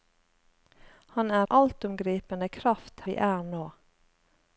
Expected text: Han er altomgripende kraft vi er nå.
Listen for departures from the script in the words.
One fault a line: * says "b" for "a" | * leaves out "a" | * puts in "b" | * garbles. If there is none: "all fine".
all fine